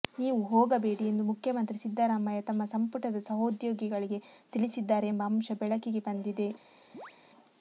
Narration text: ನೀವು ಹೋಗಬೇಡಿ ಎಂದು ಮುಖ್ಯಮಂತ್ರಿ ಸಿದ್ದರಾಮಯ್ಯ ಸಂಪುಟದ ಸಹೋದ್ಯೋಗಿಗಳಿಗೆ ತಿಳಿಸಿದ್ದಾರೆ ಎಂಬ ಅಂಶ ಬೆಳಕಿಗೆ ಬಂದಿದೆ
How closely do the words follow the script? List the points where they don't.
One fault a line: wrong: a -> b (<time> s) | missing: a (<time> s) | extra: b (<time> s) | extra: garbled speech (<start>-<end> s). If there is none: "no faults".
extra: ತಮ್ಮ (2.5 s)